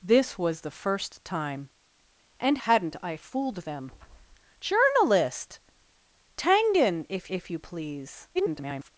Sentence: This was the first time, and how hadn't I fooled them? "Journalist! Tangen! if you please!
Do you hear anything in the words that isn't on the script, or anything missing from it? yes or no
yes